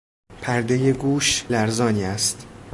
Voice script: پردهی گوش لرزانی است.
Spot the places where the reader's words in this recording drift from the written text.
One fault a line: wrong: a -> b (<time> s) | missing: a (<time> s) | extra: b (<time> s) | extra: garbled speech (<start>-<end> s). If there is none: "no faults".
no faults